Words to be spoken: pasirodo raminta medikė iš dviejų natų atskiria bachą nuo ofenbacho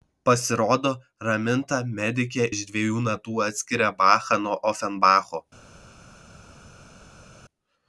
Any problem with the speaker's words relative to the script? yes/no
no